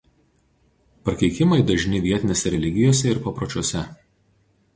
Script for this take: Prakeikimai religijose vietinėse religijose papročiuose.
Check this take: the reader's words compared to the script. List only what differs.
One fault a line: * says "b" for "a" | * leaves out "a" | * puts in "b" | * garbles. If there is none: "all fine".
* says "dažni" for "religijose"
* puts in "ir"